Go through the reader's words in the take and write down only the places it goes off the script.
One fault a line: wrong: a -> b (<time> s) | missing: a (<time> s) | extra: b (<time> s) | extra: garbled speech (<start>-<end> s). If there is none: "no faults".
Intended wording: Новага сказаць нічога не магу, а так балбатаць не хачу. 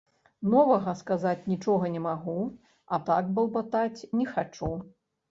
no faults